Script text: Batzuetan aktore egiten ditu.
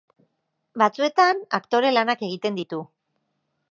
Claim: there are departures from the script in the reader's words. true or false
true